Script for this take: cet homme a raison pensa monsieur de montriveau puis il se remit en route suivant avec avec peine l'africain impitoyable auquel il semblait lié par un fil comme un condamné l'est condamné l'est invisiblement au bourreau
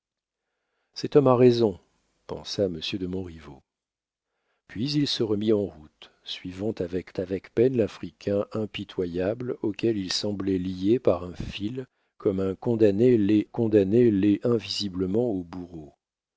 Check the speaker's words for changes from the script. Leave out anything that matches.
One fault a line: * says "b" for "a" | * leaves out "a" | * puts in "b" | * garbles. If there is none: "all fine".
all fine